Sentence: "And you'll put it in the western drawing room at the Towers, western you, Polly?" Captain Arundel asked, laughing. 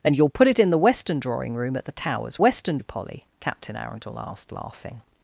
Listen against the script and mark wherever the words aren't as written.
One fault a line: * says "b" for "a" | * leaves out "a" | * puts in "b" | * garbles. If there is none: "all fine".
all fine